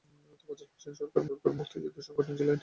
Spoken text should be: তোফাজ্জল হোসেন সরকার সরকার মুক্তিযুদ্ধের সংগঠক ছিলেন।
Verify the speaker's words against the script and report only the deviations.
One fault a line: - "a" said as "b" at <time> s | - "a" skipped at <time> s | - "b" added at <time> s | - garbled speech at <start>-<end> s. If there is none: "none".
none